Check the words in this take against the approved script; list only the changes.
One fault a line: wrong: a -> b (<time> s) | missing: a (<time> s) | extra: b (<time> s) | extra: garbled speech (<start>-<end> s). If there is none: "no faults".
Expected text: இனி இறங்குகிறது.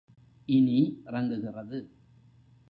no faults